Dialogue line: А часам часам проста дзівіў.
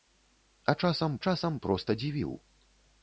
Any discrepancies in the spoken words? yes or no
no